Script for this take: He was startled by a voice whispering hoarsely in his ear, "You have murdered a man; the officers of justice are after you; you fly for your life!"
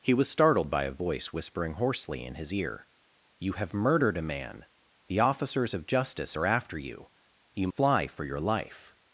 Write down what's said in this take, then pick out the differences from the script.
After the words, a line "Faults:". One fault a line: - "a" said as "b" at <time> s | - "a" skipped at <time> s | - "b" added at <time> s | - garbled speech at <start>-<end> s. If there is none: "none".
He was startled by a voice whispering hoarsely in his ear, "You have murdered a man; the officers of justice are after you; you fly for your life!"
Faults:
none